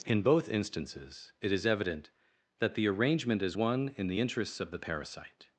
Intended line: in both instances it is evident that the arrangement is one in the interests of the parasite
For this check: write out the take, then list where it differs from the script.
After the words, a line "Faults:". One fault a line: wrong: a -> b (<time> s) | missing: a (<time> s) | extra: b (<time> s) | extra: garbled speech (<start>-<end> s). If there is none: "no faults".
in both instances it is evident that the arrangement is one in the interests of the parasite
Faults:
no faults